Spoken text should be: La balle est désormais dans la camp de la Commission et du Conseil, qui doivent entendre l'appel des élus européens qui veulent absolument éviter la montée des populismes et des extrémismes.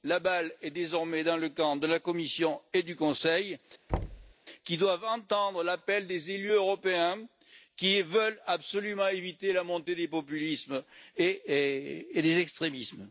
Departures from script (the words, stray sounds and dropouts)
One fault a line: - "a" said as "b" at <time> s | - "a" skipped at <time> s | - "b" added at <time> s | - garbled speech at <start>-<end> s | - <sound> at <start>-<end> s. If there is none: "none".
- "la" said as "le" at 1.4 s
- thud at 3.9-4.3 s